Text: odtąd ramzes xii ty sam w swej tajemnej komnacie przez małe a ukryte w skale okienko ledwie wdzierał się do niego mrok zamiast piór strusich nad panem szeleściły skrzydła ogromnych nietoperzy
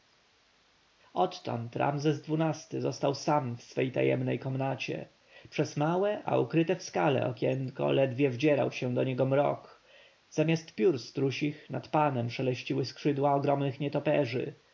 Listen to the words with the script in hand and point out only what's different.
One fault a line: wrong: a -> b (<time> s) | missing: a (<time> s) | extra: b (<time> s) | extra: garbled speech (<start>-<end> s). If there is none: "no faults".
extra: został (2.8 s)